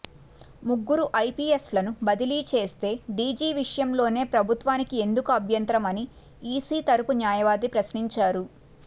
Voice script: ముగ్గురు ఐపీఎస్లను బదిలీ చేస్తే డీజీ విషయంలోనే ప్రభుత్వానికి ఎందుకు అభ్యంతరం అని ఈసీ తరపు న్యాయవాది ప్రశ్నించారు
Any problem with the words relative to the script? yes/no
no